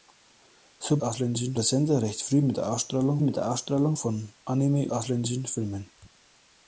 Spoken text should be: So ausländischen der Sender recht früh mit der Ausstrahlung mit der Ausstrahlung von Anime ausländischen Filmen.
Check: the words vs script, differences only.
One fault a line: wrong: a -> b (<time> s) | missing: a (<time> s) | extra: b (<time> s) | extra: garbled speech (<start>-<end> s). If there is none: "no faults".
no faults